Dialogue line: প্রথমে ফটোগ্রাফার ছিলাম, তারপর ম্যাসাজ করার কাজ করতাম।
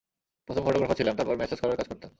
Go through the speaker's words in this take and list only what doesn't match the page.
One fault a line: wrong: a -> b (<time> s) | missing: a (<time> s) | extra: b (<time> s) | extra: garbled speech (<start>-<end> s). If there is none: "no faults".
no faults